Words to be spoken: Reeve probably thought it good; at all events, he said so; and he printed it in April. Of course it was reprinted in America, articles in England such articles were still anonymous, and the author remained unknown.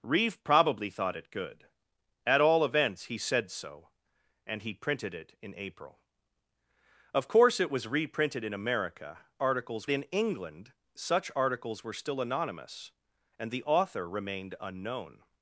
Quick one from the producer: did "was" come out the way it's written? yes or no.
yes